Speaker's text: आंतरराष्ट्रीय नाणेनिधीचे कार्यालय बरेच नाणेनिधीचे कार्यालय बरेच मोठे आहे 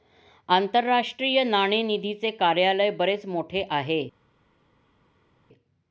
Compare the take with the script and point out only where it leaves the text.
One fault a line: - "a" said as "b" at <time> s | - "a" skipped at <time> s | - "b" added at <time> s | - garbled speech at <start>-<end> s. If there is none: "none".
- "नाणेनिधीचे कार्यालय बरेच" skipped at 3.2 s